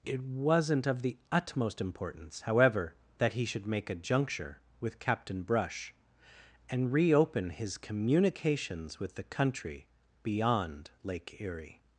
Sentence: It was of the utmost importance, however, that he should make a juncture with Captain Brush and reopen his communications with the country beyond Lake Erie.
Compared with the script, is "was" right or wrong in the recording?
wrong